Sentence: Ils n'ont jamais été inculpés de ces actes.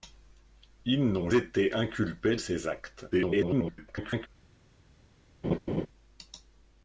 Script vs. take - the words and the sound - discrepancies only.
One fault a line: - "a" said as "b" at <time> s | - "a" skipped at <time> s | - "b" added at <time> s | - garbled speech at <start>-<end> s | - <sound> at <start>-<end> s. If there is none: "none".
- "jamais" skipped at 1.3 s
- "de" skipped at 2.4 s
- garbled speech at 3.1-4.3 s
- laugh at 5.4-5.9 s